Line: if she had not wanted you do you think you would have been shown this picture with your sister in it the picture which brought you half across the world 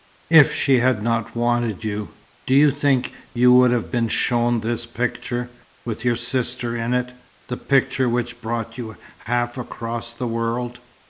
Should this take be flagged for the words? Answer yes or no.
no